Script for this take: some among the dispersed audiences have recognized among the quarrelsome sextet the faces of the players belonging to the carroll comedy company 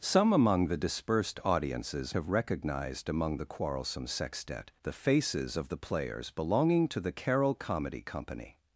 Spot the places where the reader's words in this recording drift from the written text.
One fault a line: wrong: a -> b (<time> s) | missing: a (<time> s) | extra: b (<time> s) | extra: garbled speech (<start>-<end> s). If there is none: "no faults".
no faults